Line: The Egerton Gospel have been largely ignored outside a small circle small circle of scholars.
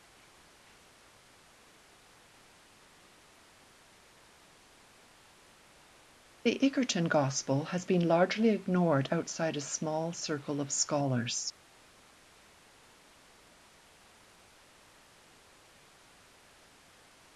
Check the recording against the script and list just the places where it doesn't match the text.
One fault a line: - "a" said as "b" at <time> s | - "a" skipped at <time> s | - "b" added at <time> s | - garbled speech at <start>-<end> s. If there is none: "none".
- "have" said as "has" at 7.7 s
- "small circle" skipped at 10.6 s